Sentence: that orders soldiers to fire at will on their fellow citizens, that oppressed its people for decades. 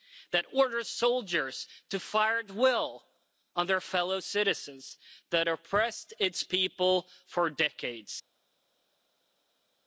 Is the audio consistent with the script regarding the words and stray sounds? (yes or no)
yes